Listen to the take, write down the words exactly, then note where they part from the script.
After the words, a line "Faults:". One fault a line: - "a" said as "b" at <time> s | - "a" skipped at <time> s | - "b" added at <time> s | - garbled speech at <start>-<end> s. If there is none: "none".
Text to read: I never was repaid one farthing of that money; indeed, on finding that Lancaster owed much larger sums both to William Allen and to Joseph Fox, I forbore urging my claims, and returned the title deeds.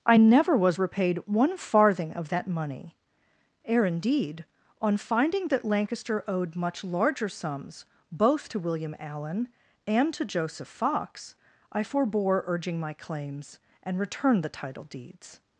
I never was repaid one farthing of that money; ere indeed, on finding that Lancaster owed much larger sums both to William Allen and to Joseph Fox, I forbore urging my claims, and returned the title deeds.
Faults:
- "ere" added at 3.6 s